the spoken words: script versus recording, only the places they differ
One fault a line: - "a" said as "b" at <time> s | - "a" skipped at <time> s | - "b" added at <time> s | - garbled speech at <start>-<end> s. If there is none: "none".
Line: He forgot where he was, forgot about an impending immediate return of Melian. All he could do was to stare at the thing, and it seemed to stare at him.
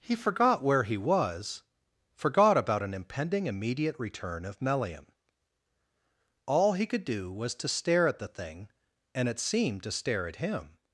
none